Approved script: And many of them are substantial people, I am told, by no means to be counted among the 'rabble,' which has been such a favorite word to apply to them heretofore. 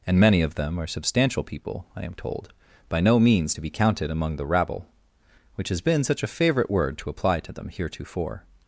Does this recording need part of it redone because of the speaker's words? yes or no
no